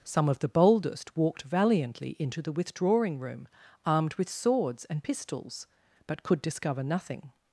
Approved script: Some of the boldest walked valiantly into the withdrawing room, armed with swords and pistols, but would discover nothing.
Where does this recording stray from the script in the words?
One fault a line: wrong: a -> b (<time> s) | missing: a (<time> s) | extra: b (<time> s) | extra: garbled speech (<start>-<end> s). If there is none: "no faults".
wrong: would -> could (6.2 s)